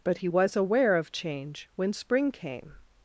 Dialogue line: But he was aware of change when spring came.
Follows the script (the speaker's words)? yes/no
yes